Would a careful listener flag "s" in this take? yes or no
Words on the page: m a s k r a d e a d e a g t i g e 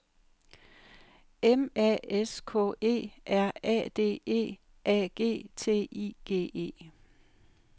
no